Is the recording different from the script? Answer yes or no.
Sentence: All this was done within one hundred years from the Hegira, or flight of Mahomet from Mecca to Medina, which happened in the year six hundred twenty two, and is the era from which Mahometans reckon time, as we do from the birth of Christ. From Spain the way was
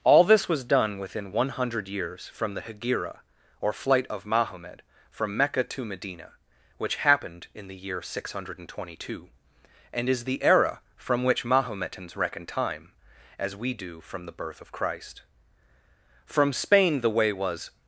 no